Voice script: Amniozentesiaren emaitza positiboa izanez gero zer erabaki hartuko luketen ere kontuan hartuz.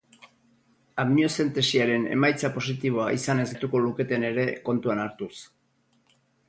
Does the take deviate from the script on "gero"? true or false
true